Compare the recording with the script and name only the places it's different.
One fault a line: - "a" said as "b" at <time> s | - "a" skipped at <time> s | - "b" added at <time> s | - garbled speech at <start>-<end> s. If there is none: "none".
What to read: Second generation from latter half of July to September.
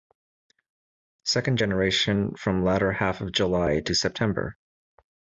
none